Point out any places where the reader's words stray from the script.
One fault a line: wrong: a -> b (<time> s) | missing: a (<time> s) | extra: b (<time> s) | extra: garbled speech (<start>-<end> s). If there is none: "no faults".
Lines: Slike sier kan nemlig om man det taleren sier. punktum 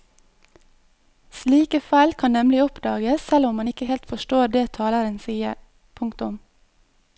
wrong: sier -> feil (1.9 s)
extra: oppdages selv (2.6 s)
extra: ikke helt forstår (3.6 s)